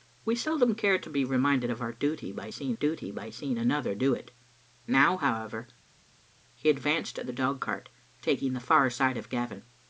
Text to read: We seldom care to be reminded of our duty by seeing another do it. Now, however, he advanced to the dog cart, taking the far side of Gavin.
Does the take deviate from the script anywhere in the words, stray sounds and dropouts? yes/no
yes